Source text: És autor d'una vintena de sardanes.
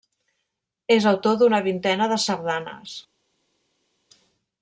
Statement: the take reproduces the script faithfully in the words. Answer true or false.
true